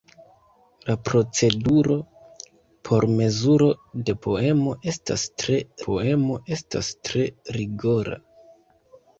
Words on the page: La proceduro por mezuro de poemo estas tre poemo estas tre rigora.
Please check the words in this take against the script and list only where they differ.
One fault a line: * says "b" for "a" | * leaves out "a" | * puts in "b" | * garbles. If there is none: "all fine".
all fine